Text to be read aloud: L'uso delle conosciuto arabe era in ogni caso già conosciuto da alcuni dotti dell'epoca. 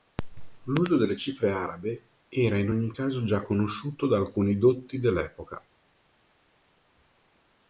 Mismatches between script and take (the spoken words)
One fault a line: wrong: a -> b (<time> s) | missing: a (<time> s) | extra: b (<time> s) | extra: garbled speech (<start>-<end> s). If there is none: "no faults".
wrong: conosciuto -> cifre (1.1 s)